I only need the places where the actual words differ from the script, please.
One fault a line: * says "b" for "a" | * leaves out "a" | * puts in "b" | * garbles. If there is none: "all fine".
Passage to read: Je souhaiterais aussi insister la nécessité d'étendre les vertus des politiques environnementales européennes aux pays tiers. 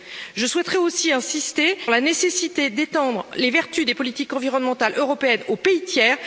all fine